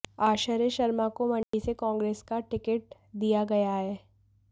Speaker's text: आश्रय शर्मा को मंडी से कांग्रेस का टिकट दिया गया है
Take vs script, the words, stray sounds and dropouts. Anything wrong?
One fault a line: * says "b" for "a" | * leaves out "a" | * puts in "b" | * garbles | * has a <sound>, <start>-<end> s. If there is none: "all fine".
* has a dropout, 1.4-1.5 s